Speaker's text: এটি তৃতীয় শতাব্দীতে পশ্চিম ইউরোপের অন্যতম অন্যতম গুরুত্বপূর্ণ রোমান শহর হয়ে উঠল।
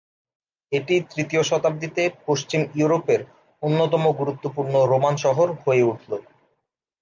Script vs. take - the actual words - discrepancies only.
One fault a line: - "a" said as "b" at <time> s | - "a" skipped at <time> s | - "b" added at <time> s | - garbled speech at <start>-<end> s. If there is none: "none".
- "অন্যতম" skipped at 4.0 s